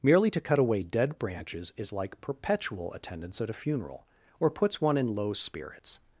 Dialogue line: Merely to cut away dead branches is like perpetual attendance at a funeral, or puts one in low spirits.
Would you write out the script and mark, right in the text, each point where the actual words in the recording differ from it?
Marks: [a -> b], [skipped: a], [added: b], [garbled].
Merely to cut away dead branches is like perpetual attendance at a funeral, or puts one in low spirits.